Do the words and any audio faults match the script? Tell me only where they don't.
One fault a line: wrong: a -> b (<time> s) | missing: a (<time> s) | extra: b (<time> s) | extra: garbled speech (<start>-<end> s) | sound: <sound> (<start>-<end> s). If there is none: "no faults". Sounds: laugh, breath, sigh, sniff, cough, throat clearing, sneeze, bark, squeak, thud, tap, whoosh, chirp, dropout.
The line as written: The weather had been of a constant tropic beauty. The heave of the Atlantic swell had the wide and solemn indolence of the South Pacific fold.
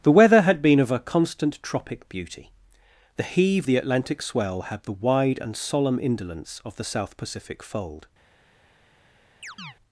missing: of (3.7 s)
sound: chirp (9.4-9.8 s)